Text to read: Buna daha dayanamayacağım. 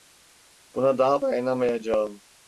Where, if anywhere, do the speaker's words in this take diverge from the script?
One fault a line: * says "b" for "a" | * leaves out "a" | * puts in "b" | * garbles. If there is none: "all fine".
all fine